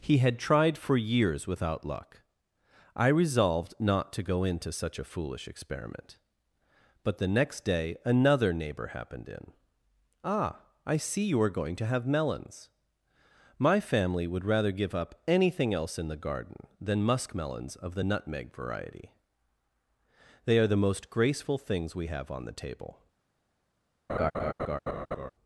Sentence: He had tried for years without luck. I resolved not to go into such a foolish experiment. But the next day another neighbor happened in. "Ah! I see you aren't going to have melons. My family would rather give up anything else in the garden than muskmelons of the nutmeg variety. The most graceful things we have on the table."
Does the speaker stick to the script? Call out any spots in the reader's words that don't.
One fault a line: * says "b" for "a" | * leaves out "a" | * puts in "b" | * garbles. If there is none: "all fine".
* says "are" for "aren't"
* puts in "They are"